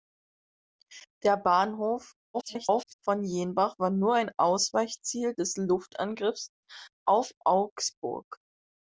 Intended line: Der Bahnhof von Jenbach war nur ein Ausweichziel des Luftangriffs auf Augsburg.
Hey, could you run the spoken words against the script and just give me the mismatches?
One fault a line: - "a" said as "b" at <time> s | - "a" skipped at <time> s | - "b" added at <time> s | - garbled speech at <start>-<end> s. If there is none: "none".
- garbled speech at 2.3-2.9 s